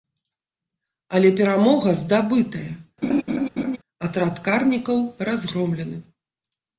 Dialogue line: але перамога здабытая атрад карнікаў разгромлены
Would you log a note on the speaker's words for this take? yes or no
no